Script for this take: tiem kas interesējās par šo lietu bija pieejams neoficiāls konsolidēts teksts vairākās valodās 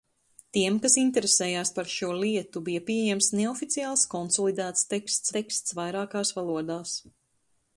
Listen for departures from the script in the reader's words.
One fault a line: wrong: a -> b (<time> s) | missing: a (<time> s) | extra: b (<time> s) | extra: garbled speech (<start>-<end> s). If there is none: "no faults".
extra: teksts (5.4 s)